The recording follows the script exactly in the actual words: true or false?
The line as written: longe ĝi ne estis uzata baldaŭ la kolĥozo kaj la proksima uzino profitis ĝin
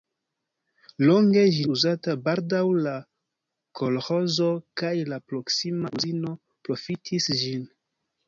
false